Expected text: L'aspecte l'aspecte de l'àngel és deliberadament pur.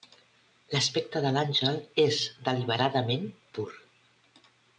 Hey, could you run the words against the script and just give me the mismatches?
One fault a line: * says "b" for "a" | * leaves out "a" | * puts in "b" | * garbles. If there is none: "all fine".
* leaves out "l'aspecte"